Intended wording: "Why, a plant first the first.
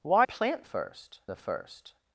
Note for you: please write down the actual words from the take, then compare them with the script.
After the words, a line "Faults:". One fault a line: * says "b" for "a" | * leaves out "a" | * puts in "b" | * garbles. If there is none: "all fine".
"Why, a plant first the first.
Faults:
all fine